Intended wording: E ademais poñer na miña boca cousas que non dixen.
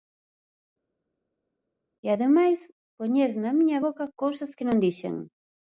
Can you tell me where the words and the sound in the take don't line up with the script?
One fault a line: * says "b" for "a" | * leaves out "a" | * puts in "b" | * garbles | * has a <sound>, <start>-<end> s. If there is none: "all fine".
all fine